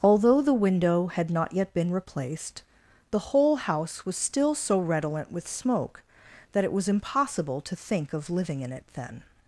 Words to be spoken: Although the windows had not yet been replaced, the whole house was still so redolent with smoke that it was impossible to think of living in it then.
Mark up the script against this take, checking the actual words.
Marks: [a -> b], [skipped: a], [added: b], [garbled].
Although the [windows -> window] had not yet been replaced, the whole house was still so redolent with smoke that it was impossible to think of living in it then.